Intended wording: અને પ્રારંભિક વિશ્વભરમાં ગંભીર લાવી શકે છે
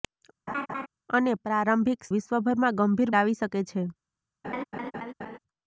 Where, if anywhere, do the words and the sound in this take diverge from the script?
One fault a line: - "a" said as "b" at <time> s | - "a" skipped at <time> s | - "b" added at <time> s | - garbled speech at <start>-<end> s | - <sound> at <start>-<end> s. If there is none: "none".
- laugh at 0.5-0.9 s
- laugh at 4.4-5.4 s